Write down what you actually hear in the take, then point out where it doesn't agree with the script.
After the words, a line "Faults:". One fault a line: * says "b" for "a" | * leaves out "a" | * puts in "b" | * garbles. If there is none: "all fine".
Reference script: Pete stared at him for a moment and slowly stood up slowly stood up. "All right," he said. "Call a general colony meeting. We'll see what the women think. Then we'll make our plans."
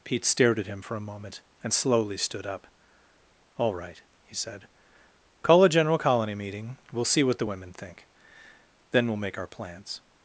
Pete stared at him for a moment and slowly stood up. "All right," he said. "Call a general colony meeting. We'll see what the women think. Then we'll make our plans."
Faults:
* leaves out "slowly stood up"